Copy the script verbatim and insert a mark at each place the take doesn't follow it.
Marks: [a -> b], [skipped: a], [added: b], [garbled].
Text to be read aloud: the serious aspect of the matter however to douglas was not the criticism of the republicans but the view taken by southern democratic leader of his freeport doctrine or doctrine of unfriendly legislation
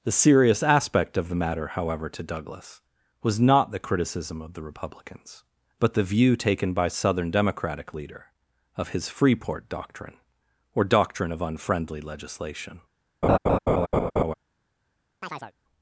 the serious aspect of the matter however to douglas was not the criticism of the republicans but the view taken by southern democratic leader of his freeport doctrine or doctrine of unfriendly legislation